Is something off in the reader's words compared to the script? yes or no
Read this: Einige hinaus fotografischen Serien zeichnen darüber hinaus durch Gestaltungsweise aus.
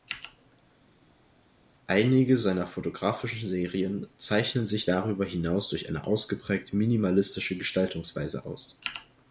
yes